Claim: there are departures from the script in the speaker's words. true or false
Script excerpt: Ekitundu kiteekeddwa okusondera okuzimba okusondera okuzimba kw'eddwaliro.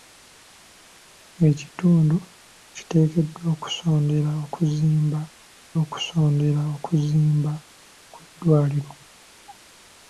false